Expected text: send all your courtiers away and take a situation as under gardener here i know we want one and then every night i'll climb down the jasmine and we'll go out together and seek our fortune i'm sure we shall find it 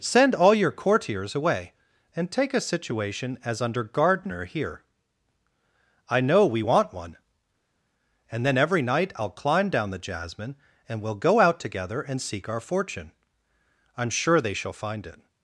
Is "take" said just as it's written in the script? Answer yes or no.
yes